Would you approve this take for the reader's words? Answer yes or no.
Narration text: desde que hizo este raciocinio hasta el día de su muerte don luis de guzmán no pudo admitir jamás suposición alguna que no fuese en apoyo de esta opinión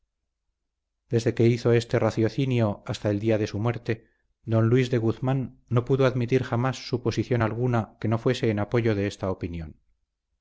yes